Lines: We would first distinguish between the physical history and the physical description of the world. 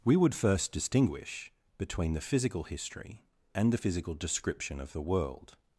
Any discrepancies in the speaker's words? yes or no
no